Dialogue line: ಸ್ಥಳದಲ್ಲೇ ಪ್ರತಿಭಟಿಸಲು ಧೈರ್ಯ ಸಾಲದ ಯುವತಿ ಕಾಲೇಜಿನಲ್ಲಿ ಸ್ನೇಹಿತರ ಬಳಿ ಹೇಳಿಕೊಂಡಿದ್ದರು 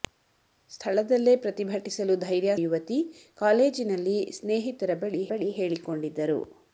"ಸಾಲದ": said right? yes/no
no